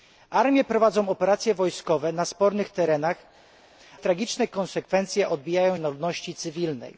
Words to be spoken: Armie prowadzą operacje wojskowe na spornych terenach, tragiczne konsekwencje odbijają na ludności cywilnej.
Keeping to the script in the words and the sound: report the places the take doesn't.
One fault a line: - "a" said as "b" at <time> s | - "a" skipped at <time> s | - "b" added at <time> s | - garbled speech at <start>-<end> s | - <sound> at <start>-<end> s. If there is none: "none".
none